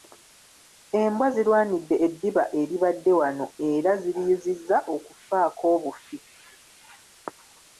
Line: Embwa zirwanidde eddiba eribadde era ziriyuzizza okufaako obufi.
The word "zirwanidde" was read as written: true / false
true